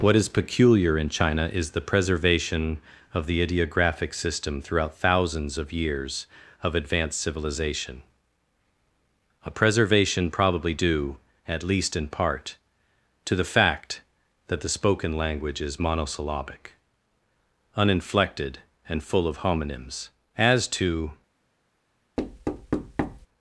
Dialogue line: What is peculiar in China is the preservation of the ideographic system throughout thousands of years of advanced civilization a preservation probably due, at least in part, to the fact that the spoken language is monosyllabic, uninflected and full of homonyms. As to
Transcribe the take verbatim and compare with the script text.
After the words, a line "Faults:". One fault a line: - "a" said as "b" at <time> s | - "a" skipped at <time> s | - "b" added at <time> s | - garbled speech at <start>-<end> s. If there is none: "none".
What is peculiar in China is the preservation of the ideographic system throughout thousands of years of advanced civilization a preservation probably due, at least in part, to the fact that the spoken language is monosyllabic, uninflected and full of homonyms. As to
Faults:
none